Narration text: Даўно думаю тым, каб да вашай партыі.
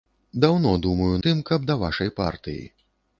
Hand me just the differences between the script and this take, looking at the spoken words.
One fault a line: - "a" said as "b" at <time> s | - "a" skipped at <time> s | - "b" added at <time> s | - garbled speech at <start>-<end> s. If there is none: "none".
none